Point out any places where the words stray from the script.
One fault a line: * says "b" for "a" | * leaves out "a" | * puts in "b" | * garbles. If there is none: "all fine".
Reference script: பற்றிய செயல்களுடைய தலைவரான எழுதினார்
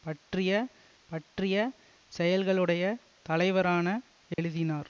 * puts in "பற்றிய"